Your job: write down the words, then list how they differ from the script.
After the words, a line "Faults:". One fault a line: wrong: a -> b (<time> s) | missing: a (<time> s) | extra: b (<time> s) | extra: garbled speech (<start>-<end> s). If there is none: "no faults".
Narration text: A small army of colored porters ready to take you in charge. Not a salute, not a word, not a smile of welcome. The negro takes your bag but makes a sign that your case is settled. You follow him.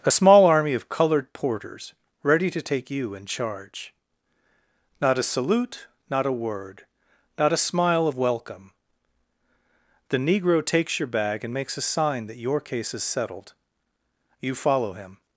A small army of colored porters ready to take you in charge. Not a salute, not a word, not a smile of welcome. The negro takes your bag and makes a sign that your case is settled. You follow him.
Faults:
wrong: but -> and (11.4 s)